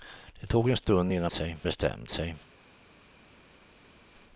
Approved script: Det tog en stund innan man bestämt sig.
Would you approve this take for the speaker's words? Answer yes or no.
no